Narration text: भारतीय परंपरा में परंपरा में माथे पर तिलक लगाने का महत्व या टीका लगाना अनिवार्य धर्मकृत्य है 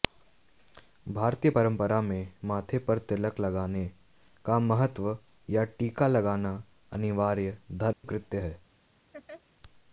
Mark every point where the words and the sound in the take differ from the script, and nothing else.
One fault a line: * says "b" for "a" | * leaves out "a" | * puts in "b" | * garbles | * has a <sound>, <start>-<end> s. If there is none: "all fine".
* leaves out "परंपरा में"
* has a dropout, 7.9-8.0 s
* has a laugh, 9.1-9.4 s